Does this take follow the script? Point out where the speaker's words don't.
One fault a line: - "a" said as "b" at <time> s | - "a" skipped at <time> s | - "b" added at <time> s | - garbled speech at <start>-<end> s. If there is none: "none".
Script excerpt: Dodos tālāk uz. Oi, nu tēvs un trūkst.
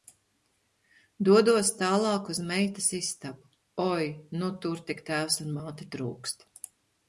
- "meitas istabu" added at 2.5 s
- "tur tik" added at 4.7 s
- "māte" added at 5.6 s